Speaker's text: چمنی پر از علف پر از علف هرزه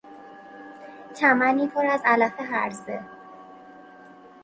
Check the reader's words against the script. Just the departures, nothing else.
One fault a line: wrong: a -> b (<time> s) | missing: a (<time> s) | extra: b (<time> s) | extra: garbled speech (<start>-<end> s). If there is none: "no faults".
missing: پر از علف (2.4 s)